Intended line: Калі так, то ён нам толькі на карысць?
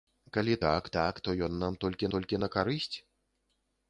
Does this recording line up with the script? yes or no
no